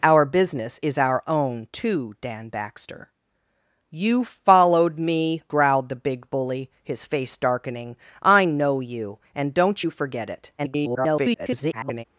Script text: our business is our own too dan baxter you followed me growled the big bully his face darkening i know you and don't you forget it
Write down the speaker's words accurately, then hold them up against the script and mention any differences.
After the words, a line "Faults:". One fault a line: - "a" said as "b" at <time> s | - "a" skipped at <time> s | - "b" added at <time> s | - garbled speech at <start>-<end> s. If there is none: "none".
our business is our own too dan baxter you followed me growled the big bully his face darkening i know you and don't you forget it [garbled]
Faults:
- garbled speech at 10.6-12.0 s